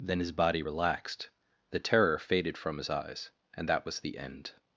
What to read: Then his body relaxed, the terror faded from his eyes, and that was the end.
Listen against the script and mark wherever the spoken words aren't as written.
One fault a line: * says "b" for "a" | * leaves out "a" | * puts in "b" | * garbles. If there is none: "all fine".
all fine